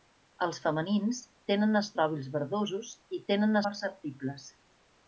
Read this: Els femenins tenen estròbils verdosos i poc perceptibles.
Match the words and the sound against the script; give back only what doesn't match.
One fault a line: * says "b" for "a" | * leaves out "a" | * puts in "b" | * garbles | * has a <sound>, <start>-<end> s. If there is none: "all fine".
* says "tenen" for "poc"